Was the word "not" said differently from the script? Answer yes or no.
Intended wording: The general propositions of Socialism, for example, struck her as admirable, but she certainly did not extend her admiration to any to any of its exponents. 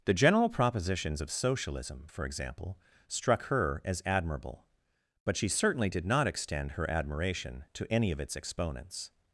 no